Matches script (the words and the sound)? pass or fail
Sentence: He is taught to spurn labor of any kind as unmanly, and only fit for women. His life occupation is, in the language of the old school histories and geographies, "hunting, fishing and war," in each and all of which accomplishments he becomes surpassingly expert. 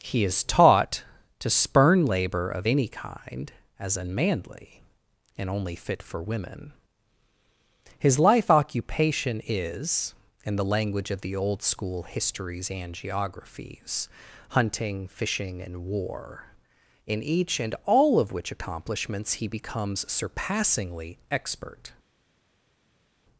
pass